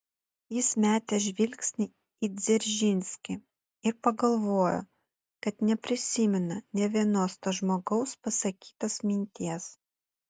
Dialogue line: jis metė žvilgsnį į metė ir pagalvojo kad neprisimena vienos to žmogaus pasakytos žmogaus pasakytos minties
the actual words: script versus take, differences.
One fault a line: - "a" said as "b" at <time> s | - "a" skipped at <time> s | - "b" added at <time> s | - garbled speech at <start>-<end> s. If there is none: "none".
- "metė" said as "dzeržinskį" at 2.4 s
- "nė" added at 6.8 s
- "žmogaus pasakytos" skipped at 9.0 s